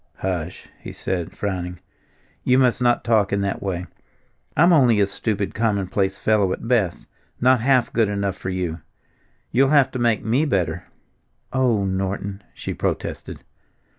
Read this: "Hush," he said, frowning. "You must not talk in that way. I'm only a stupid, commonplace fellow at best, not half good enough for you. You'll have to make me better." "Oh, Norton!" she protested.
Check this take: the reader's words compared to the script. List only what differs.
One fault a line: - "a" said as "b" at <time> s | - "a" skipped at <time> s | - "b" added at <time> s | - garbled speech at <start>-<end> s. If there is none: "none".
none